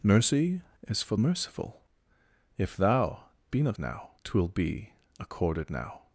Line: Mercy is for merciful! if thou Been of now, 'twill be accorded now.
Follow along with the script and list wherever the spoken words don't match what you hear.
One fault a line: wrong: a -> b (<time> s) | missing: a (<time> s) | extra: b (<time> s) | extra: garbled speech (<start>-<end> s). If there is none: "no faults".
no faults